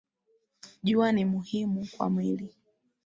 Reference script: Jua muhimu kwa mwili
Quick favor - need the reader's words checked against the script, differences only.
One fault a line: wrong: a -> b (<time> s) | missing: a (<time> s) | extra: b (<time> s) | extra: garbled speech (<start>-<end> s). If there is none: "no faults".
extra: ni (1.1 s)